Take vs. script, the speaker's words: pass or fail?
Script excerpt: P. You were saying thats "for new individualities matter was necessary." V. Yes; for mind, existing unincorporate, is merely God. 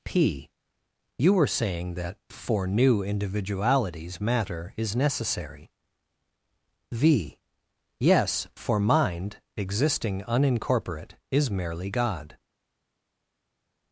fail